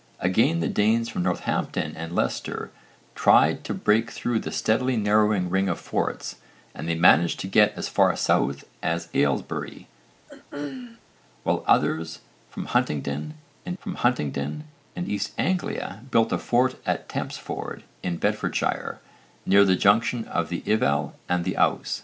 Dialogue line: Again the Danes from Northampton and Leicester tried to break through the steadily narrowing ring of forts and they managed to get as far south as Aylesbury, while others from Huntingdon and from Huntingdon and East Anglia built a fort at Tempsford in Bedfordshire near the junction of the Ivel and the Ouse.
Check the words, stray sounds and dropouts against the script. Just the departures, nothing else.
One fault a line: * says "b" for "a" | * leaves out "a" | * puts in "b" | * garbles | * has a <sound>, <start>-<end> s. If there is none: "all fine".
* has a throat clearing, 10.3-11.0 s